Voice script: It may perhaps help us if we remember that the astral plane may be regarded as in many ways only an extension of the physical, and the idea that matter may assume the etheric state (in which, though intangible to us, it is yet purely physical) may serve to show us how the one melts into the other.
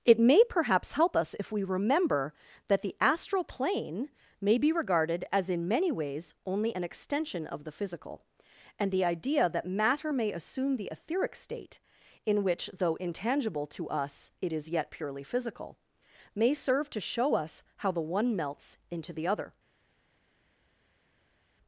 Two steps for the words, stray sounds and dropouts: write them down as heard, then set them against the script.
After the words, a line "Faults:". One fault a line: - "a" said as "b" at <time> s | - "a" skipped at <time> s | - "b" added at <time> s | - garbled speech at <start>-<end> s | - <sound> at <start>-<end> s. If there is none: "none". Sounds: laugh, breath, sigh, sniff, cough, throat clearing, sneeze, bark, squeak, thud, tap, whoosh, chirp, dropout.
It may perhaps help us if we remember that the astral plane may be regarded as in many ways only an extension of the physical, and the idea that matter may assume the etheric state (in which, though intangible to us, it is yet purely physical) may serve to show us how the one melts into the other.
Faults:
none